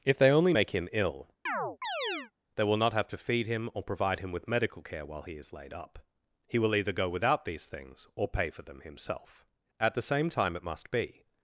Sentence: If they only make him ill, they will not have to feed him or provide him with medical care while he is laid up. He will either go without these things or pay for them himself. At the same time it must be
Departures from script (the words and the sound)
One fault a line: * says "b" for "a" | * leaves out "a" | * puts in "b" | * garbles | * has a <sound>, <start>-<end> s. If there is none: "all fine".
* has a chirp, 1.5-2.3 s